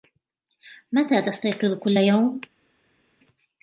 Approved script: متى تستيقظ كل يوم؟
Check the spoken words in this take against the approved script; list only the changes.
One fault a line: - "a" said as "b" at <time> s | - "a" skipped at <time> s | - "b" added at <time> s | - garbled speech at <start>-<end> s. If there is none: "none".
none